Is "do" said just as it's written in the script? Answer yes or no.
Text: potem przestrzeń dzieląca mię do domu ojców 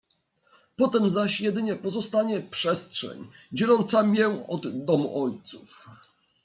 no